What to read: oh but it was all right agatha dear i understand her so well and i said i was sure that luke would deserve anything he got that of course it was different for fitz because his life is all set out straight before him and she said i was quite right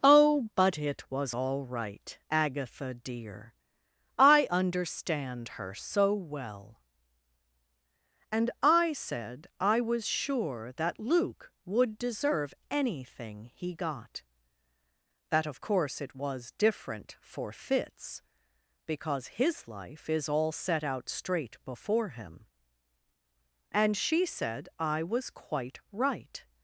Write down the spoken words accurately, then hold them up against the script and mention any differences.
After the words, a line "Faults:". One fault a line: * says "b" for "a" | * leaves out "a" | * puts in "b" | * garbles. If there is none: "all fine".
oh but it was all right agatha dear i understand her so well and i said i was sure that luke would deserve anything he got that of course it was different for fitz because his life is all set out straight before him and she said i was quite right
Faults:
all fine